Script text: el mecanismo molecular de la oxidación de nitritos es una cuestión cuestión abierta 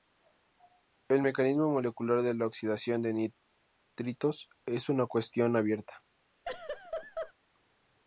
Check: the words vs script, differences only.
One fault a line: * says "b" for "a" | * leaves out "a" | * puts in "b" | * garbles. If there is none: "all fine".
* leaves out "cuestión"